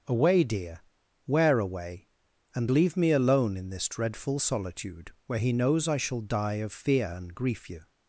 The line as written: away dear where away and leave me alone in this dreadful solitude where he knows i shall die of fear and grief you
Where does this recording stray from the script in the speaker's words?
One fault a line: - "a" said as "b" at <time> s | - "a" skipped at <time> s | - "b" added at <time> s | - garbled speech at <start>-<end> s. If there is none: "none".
none